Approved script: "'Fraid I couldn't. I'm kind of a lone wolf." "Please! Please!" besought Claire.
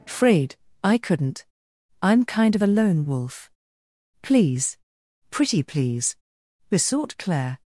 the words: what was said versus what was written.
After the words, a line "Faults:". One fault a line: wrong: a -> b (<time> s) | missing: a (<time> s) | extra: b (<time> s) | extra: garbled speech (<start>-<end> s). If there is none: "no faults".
"'Fraid I couldn't. I'm kind of a lone wolf." "Please! Pretty please!" besought Claire.
Faults:
extra: Pretty (5.3 s)